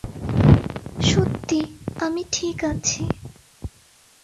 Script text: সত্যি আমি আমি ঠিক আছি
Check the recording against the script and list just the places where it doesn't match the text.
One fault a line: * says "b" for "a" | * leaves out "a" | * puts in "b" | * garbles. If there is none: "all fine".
* leaves out "আমি"